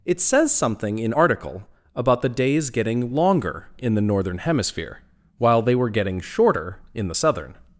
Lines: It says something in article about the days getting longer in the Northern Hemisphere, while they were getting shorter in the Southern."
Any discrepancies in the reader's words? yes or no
no